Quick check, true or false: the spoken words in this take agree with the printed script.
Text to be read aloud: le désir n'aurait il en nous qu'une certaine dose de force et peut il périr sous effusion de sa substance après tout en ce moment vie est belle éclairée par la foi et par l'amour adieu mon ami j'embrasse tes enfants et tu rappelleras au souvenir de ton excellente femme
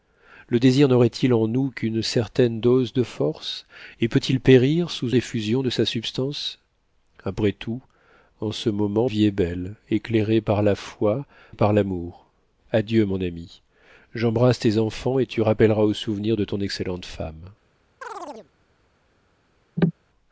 true